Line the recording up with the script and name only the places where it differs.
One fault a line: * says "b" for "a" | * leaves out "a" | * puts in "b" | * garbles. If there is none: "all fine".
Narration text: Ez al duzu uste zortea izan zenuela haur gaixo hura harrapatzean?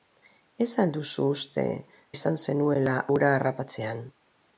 * leaves out "zortea"
* leaves out "haur gaixo"